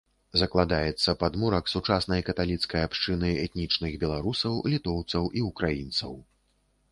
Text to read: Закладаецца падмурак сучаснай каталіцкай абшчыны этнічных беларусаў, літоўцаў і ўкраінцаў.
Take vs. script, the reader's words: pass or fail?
pass